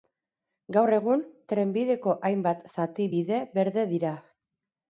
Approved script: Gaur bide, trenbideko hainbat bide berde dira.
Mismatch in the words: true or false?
true